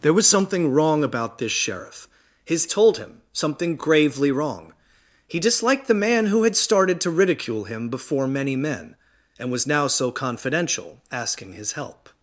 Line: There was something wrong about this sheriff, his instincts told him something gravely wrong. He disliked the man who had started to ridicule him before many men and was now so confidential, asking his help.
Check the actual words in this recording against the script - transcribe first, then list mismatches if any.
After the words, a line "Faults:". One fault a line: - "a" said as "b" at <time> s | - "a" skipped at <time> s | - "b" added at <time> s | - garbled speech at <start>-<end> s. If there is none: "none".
There was something wrong about this sheriff, his told him something gravely wrong. He disliked the man who had started to ridicule him before many men and was now so confidential, asking his help.
Faults:
- "instincts" skipped at 2.7 s